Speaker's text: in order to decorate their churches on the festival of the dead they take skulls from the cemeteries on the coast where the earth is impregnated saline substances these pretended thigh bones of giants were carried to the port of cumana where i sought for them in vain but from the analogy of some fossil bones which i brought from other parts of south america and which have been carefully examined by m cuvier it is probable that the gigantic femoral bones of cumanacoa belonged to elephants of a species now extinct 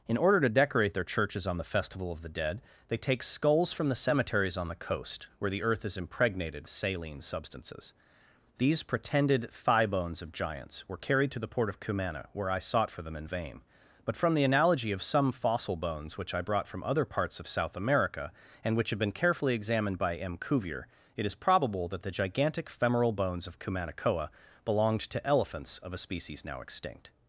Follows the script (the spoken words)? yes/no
yes